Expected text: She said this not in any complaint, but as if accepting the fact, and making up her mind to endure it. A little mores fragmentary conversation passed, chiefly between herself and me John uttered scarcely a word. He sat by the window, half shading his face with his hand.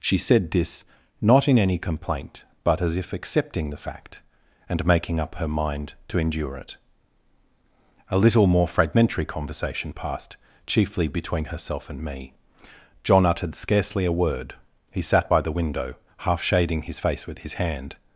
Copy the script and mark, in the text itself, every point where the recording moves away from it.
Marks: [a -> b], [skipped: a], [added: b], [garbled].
She said this not in any complaint, but as if accepting the fact, and making up her mind to endure it. A little [mores -> more] fragmentary conversation passed, chiefly between herself and me John uttered scarcely a word. He sat by the window, half shading his face with his hand.